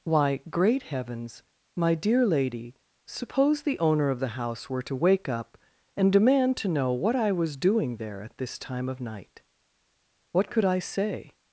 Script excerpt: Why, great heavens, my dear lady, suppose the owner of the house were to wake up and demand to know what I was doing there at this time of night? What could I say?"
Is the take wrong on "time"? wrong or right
right